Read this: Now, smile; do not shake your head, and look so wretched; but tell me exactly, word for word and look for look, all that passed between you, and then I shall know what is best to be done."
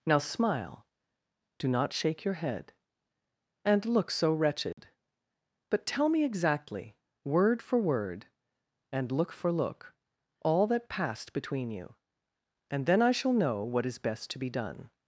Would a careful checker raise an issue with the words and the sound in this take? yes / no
yes